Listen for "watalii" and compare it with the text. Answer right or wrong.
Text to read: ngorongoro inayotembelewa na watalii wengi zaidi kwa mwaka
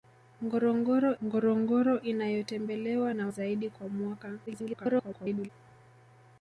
wrong